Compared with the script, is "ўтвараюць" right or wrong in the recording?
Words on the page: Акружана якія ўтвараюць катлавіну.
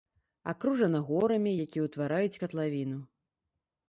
right